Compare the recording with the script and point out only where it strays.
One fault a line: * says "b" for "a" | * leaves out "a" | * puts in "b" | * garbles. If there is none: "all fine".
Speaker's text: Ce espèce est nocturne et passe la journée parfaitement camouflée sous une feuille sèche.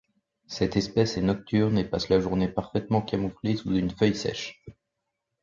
* says "Cette" for "Ce"